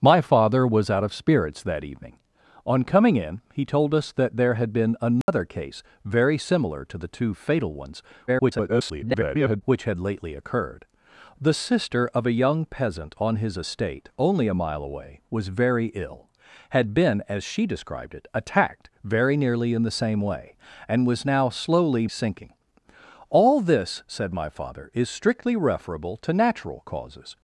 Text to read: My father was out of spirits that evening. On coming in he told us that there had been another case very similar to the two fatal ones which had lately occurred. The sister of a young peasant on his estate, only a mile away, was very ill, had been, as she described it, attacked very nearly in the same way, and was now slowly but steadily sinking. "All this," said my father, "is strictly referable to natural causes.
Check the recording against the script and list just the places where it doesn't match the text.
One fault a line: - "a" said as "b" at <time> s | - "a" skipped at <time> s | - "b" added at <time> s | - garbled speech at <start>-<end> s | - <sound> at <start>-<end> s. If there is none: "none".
- dropout at 5.2-5.3 s
- garbled speech at 8.3-9.6 s
- "but steadily" skipped at 22.1 s